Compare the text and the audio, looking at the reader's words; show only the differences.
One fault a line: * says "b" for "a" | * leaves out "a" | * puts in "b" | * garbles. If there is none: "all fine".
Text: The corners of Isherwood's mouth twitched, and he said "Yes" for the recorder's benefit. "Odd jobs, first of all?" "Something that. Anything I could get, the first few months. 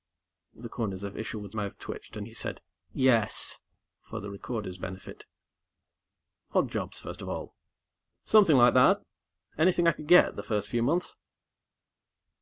* puts in "like"